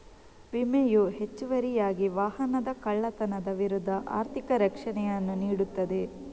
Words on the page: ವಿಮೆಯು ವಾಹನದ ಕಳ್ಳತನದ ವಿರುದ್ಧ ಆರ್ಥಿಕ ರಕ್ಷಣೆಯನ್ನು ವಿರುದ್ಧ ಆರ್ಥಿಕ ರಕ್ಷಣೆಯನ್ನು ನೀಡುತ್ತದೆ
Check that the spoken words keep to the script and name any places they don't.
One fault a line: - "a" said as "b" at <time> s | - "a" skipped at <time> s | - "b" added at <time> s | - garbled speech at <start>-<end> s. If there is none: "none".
- "ಹೆಚ್ಚುವರಿಯಾಗಿ" added at 1.2 s
- "ವಿರುದ್ಧ ಆರ್ಥಿಕ ರಕ್ಷಣೆಯನ್ನು" skipped at 5.3 s